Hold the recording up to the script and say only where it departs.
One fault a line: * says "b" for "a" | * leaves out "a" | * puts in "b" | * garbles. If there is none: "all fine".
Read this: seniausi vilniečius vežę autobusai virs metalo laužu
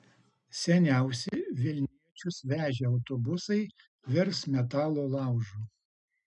all fine